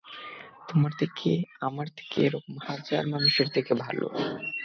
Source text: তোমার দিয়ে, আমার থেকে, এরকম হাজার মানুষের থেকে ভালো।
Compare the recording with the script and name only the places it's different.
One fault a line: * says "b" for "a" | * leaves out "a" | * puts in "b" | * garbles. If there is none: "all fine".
* says "থেকে" for "দিয়ে"